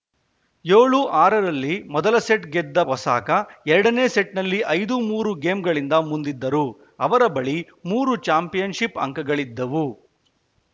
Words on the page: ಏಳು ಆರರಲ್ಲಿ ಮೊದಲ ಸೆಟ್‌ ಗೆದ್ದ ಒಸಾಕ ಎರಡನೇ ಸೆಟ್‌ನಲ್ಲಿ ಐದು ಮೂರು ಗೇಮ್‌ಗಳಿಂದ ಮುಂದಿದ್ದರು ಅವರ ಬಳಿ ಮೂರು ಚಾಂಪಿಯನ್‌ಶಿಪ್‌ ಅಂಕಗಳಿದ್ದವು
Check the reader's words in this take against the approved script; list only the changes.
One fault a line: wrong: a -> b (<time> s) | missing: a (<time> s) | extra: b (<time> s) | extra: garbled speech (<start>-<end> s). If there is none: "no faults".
no faults